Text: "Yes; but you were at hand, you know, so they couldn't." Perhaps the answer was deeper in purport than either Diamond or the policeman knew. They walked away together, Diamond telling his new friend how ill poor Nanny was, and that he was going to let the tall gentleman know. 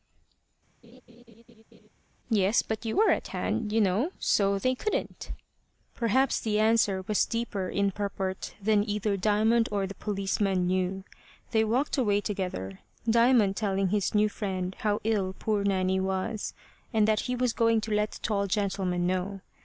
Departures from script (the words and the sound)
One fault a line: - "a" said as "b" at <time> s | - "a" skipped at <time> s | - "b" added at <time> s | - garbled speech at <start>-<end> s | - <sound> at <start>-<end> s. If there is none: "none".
- laugh at 0.8-1.9 s